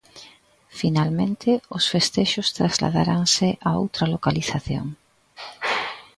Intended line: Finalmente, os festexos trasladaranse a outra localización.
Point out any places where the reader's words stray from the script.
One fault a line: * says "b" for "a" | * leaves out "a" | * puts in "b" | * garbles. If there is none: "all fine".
all fine